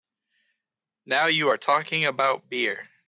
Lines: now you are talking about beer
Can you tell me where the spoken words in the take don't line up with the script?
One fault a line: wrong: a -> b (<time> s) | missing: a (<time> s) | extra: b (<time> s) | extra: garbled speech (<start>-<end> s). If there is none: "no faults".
no faults